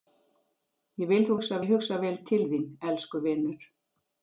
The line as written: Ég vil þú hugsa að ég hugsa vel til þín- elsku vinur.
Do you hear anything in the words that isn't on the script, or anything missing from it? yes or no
no